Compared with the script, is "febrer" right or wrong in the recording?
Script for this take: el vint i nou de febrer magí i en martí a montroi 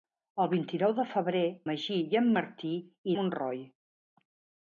right